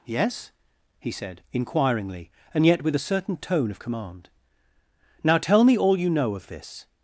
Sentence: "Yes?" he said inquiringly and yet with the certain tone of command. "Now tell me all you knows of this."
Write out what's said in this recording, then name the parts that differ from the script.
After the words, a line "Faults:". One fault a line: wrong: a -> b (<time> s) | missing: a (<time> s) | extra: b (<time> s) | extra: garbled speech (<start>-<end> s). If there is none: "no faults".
"Yes?" he said inquiringly and yet with a certain tone of command. "Now tell me all you know of this."
Faults:
wrong: the -> a (3.0 s)
wrong: knows -> know (6.1 s)